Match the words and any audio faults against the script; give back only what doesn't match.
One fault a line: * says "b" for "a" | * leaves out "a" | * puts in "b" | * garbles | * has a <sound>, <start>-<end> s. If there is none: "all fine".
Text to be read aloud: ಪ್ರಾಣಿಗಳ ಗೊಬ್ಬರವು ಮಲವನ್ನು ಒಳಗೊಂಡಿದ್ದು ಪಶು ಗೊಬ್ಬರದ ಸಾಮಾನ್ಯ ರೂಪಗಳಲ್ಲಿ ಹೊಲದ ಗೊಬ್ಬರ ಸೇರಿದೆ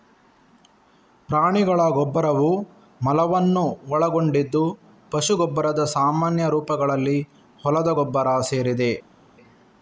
all fine